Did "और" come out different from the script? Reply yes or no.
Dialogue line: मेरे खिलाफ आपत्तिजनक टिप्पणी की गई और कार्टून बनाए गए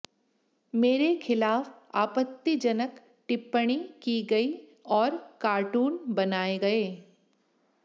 no